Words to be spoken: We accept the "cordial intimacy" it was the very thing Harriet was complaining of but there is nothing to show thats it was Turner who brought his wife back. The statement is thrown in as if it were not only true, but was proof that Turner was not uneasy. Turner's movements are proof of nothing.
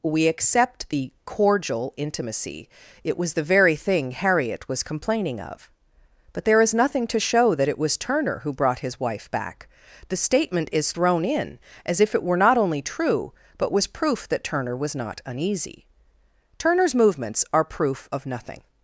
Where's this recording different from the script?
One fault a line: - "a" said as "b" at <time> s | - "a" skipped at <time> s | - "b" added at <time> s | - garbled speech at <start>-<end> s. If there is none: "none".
- "thats" said as "that" at 7.5 s